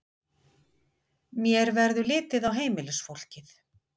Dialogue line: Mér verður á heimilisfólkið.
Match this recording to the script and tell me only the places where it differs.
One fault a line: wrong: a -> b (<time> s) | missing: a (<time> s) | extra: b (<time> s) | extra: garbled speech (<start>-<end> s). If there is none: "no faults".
extra: litið (2.1 s)